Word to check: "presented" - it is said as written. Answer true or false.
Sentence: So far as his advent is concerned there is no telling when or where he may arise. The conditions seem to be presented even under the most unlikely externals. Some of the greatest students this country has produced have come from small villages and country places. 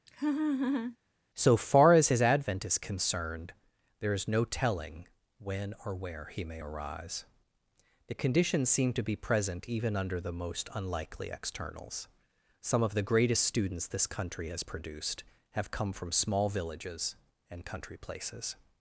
false